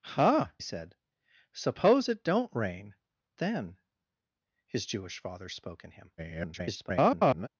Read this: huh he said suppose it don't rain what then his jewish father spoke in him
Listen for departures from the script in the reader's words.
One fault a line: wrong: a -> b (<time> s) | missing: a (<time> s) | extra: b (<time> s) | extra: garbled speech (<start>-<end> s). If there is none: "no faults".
missing: he (0.5 s)
missing: what (2.9 s)
extra: garbled speech (6.2-7.5 s)